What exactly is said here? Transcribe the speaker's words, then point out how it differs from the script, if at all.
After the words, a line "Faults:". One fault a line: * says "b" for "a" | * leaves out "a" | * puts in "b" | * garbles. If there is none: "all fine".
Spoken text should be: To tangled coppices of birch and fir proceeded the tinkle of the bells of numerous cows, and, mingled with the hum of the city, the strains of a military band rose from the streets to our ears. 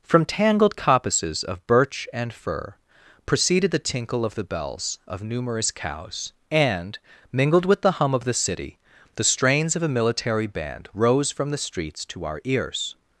From tangled coppices of birch and fir proceeded the tinkle of the bells of numerous cows, and, mingled with the hum of the city, the strains of a military band rose from the streets to our ears.
Faults:
* says "From" for "To"